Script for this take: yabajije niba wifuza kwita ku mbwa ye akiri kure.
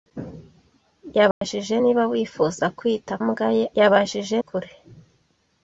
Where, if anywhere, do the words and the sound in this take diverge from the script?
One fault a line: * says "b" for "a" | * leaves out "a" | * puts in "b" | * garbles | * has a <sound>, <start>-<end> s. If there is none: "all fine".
* has a dropout, 1.3-1.4 s
* leaves out "ku"
* says "yabajije" for "akiri"